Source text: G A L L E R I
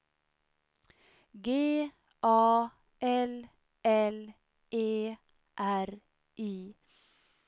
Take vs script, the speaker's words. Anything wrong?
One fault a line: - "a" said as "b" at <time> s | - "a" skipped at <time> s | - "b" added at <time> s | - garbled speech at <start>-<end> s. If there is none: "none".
none